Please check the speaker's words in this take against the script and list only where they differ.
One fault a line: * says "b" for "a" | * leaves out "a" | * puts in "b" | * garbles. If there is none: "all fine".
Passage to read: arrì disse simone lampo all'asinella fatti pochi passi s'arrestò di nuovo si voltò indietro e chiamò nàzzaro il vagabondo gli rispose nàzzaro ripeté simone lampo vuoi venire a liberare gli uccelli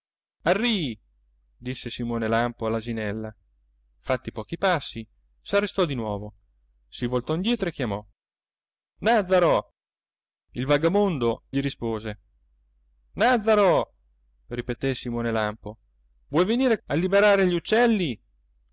all fine